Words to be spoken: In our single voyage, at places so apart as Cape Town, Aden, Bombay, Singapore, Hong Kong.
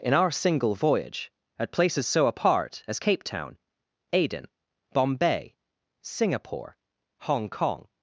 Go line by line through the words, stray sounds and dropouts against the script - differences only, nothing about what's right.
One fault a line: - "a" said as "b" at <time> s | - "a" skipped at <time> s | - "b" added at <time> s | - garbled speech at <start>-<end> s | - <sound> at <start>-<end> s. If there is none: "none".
none